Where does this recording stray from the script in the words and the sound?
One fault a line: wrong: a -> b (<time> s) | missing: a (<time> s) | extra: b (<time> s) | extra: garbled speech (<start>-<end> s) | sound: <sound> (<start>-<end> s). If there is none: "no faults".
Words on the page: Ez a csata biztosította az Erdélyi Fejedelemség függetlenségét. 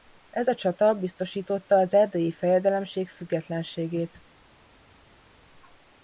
no faults